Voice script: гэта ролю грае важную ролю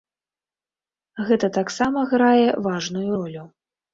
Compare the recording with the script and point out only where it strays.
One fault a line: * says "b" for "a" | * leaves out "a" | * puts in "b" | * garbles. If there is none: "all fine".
* says "таксама" for "ролю"